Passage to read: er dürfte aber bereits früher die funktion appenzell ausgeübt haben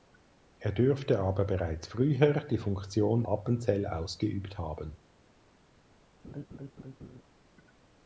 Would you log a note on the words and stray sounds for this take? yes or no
yes